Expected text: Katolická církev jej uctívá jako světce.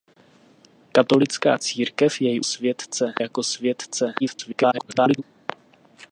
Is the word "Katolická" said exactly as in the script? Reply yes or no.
yes